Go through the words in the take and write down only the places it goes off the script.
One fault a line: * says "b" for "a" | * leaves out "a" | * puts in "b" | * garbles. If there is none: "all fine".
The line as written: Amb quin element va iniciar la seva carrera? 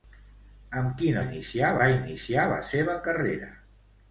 * says "iniciar" for "element"